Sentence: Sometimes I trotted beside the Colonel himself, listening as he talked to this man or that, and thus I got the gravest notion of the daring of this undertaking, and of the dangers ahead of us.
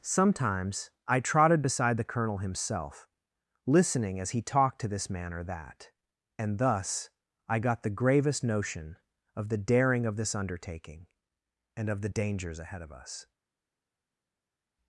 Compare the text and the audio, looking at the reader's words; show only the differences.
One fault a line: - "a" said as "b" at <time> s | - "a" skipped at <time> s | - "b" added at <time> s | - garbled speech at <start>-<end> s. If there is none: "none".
none